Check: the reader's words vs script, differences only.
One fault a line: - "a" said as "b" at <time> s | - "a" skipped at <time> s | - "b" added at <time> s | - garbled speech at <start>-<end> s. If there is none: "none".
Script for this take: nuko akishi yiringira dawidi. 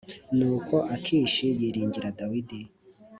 none